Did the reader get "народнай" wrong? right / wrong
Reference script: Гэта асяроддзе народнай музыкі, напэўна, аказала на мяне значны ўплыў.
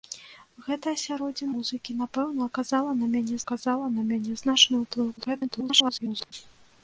wrong